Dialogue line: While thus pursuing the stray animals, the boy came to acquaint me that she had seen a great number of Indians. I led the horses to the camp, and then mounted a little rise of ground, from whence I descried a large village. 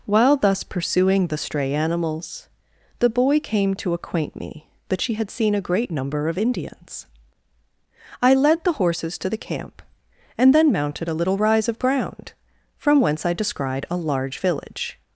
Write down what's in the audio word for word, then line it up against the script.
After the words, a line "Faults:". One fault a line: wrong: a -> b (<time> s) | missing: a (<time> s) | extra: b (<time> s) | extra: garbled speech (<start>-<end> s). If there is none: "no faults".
While thus pursuing the stray animals, the boy came to acquaint me that she had seen a great number of Indians. I led the horses to the camp, and then mounted a little rise of ground, from whence I descried a large village.
Faults:
no faults